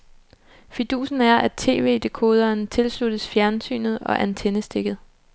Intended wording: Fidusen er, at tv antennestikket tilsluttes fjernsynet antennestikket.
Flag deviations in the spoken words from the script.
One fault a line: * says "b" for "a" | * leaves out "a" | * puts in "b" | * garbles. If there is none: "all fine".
* says "dekoderen" for "antennestikket"
* puts in "og"